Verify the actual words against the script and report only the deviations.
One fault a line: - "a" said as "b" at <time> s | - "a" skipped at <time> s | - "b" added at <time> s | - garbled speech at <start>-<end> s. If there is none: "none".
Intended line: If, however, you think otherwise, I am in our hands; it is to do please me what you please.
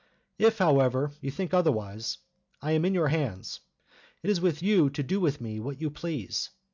- "our" said as "your" at 3.0 s
- "with you" added at 4.4 s
- "please" said as "with" at 5.2 s